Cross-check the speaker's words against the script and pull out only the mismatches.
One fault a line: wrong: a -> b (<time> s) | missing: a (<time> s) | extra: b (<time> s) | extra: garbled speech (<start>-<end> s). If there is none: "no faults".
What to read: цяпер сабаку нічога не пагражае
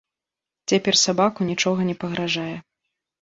no faults